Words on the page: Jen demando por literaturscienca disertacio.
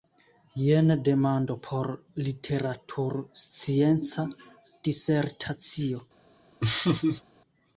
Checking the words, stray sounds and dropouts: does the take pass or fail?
fail